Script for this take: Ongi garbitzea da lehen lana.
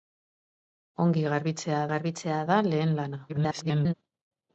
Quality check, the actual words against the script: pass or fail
fail